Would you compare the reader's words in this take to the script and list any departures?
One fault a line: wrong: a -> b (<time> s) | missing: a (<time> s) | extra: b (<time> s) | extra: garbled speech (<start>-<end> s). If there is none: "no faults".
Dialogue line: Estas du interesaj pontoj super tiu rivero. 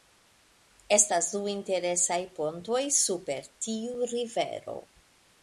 no faults